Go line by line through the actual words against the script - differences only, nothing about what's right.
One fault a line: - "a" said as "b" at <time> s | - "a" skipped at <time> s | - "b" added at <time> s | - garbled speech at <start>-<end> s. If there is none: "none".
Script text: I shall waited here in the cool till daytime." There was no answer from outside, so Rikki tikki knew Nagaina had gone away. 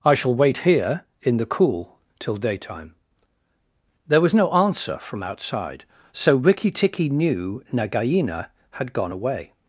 - "waited" said as "wait" at 0.3 s